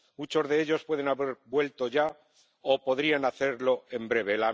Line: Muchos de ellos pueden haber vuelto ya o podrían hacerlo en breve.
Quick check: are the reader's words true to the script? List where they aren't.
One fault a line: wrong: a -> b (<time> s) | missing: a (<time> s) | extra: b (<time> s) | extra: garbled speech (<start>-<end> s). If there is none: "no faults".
no faults